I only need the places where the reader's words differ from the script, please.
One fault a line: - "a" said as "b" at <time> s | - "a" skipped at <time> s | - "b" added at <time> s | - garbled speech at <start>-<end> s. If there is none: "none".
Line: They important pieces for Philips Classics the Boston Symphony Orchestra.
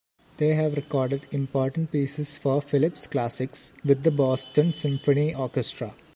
- "have recorded" added at 0.6 s
- "with" added at 3.8 s